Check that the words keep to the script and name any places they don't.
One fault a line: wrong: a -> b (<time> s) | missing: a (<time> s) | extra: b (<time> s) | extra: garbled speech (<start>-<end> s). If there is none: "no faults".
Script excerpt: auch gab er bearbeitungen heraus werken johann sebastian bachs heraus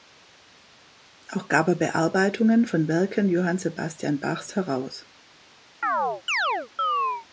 wrong: heraus -> von (2.6 s)